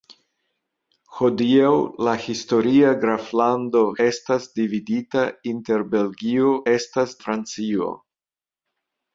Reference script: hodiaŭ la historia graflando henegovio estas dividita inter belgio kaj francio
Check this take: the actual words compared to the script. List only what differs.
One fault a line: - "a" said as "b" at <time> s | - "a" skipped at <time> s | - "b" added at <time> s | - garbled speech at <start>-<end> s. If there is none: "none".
- "henegovio" skipped at 3.8 s
- "kaj" said as "estas" at 6.7 s